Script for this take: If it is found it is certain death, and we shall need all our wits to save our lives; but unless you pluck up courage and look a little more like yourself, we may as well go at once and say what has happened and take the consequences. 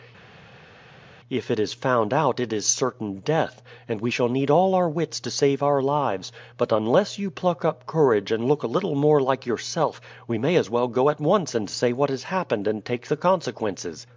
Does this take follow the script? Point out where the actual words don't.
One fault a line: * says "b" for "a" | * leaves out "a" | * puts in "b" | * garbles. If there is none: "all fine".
* puts in "out"